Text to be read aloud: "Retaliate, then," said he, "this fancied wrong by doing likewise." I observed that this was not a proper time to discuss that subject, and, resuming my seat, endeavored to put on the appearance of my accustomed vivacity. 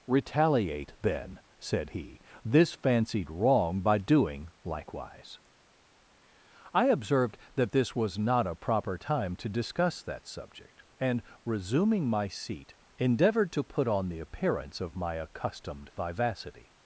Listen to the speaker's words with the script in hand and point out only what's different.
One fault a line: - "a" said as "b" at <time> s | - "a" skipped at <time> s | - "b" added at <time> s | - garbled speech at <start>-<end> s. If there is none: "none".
none